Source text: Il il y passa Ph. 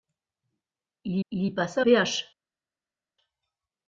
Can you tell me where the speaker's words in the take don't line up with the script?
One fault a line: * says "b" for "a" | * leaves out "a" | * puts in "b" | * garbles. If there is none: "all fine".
all fine